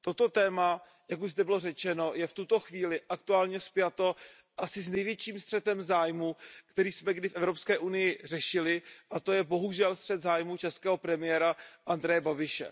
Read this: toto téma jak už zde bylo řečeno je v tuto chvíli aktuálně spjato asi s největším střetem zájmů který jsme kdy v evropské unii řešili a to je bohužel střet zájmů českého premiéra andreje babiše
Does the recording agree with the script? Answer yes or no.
yes